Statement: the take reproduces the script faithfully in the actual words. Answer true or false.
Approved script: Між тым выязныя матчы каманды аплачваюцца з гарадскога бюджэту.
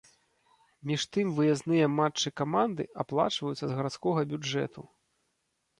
true